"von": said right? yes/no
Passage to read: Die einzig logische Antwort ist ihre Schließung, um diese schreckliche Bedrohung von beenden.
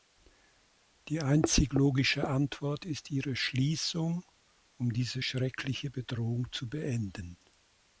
no